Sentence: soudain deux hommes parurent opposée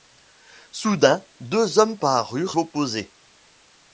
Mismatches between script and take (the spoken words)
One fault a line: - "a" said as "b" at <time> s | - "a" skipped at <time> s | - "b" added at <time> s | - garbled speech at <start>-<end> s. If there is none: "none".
none